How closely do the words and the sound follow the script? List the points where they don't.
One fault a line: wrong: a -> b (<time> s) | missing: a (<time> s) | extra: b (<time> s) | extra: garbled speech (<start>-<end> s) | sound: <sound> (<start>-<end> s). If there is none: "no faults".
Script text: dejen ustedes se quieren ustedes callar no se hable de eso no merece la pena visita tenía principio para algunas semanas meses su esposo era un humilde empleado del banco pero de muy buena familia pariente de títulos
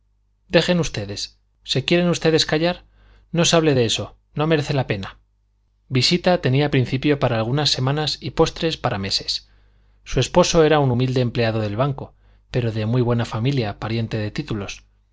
extra: y postres para (8.2 s)